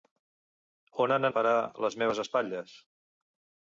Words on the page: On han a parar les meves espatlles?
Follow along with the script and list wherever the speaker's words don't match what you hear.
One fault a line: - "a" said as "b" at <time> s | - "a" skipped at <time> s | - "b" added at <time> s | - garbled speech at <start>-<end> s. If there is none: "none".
none